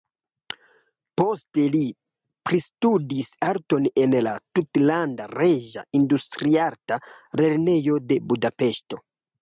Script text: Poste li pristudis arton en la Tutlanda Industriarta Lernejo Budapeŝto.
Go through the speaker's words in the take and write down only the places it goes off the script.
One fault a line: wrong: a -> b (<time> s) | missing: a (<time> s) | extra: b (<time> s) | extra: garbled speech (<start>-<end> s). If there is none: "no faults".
extra: Reĝa (5.4 s)
extra: de (8.1 s)